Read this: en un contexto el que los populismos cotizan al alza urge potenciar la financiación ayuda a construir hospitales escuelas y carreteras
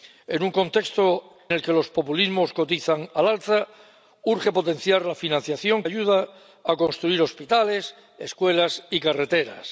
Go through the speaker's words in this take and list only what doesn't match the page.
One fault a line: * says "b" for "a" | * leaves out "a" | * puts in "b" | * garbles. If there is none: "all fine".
all fine